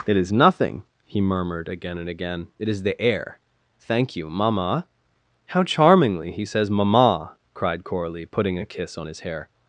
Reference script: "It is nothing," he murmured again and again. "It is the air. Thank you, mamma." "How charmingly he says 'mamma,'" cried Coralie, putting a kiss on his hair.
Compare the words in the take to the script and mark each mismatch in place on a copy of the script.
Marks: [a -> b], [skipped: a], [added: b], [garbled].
"It is nothing," he murmured again and again. "It is the air. Thank you, mamma." "How charmingly he says 'mamma,'" cried Coralie, putting a kiss on his hair.